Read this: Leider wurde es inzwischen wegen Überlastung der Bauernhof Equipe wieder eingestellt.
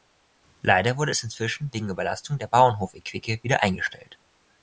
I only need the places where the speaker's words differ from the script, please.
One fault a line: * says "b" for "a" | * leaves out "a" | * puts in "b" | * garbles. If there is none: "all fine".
all fine